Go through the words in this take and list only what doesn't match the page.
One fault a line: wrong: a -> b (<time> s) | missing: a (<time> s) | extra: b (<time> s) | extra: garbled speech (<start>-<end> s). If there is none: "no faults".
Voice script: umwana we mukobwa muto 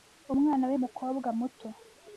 no faults